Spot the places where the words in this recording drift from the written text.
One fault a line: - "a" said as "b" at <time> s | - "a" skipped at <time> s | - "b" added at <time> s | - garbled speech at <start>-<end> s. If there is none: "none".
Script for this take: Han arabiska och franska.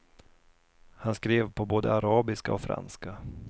- "skrev på både" added at 1.1 s